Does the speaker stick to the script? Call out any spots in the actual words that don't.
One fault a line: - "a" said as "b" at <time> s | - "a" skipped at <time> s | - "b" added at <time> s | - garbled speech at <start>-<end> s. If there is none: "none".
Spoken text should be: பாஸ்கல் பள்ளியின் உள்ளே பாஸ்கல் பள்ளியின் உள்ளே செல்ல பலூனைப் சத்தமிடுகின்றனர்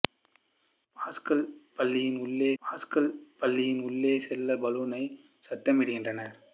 none